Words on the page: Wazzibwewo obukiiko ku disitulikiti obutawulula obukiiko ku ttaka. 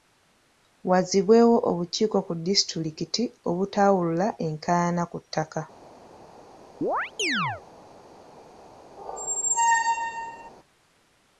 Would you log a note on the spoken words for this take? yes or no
yes